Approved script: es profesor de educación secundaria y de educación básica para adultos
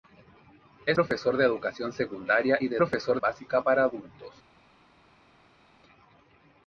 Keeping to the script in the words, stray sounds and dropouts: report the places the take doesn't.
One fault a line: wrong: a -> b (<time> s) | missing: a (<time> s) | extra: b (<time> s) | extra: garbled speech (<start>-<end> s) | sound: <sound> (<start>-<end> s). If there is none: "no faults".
wrong: educación -> profesor (2.8 s)